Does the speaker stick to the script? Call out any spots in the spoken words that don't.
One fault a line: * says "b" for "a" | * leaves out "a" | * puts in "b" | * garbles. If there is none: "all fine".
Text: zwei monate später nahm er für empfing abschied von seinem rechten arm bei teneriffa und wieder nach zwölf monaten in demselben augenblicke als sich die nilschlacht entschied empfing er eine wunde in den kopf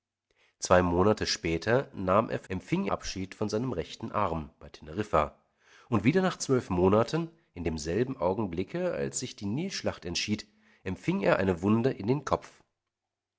all fine